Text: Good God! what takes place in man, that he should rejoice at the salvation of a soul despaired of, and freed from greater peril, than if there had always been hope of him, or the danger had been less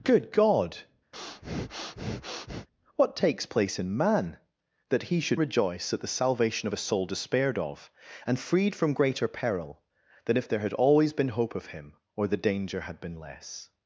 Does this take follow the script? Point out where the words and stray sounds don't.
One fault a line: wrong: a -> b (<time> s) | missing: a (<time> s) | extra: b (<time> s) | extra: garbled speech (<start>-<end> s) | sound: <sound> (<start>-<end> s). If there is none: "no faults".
sound: breath (1.1-2.7 s)